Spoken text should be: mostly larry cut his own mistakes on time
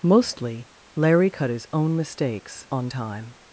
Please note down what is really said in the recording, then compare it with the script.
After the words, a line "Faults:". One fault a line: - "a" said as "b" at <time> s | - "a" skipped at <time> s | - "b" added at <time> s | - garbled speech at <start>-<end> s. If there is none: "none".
mostly larry cut his own mistakes on time
Faults:
none